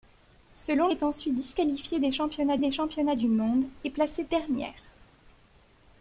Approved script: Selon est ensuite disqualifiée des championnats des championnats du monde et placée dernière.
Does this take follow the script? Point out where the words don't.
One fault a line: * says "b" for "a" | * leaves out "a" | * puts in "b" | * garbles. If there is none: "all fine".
all fine